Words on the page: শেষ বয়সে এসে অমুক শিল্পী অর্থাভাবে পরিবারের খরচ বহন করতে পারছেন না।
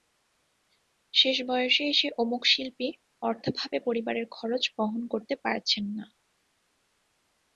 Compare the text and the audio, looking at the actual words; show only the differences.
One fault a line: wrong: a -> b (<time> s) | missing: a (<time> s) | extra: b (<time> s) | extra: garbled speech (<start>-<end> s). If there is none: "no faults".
no faults